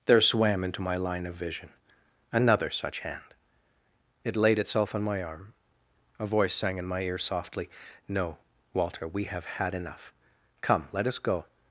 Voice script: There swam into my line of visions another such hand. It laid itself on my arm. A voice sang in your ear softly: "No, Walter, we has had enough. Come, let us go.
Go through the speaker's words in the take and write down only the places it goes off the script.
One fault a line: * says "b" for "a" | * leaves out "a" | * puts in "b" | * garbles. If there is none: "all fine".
* says "vision" for "visions"
* says "my" for "your"
* says "have" for "has"